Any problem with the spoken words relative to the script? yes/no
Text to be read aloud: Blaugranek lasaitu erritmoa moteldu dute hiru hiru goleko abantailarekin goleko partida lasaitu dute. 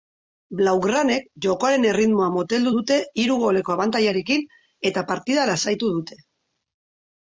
yes